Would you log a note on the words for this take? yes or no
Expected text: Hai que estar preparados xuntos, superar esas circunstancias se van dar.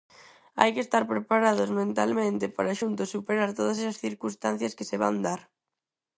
yes